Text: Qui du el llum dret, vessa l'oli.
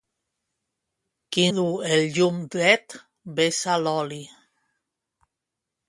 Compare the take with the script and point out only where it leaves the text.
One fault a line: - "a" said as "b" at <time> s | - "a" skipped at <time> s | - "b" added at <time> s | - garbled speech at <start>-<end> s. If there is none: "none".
none